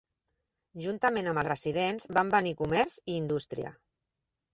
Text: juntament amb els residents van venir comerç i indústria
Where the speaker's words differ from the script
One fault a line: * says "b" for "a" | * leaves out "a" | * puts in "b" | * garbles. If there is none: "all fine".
all fine